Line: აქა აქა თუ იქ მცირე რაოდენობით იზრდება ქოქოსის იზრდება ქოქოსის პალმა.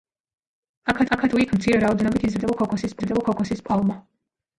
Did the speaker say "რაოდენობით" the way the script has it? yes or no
yes